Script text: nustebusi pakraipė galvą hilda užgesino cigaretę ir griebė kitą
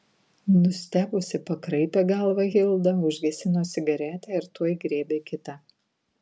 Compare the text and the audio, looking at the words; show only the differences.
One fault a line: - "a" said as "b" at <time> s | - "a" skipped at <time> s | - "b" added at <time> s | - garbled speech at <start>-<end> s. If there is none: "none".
- "tuoj" added at 4.6 s